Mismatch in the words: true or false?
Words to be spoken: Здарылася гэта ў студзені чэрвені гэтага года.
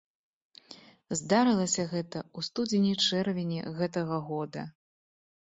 false